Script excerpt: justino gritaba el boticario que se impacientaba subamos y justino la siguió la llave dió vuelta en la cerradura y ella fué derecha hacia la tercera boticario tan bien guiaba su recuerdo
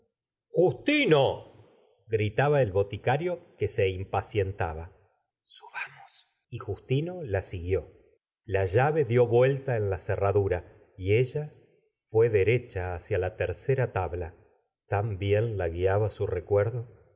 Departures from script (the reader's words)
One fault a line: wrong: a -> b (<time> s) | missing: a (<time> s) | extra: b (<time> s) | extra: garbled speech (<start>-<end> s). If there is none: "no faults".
wrong: boticario -> tabla (13.9 s)
extra: la (15.6 s)